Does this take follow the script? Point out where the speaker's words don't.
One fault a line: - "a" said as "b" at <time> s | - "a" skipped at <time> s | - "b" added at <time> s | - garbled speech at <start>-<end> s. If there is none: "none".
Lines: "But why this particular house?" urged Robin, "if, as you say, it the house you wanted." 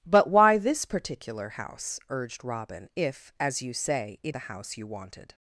none